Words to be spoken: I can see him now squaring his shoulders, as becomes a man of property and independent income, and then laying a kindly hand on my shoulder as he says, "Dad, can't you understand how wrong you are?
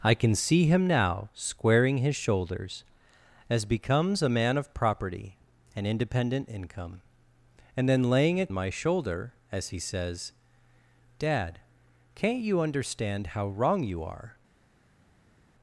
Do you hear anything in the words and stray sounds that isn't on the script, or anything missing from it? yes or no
yes